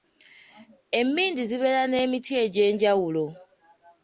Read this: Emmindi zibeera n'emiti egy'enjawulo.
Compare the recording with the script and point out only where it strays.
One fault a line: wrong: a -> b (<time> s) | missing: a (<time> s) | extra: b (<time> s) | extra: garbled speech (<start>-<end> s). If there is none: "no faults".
no faults